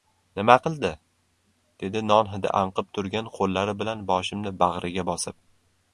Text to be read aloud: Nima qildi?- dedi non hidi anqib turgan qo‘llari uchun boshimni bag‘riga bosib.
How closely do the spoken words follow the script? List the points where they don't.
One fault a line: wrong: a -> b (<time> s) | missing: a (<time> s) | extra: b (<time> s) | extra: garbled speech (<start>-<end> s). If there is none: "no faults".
wrong: uchun -> bilan (3.8 s)